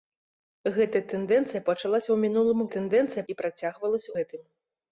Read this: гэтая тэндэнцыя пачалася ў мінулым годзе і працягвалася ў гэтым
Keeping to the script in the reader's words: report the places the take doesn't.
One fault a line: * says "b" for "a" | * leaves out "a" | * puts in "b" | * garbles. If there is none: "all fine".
* says "тэндэнцыя" for "годзе"
* leaves out "ў"